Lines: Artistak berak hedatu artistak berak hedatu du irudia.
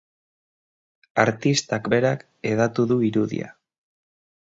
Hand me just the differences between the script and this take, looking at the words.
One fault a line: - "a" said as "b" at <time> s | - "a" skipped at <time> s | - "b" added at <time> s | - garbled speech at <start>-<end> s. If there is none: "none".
- "artistak berak hedatu" skipped at 2.8 s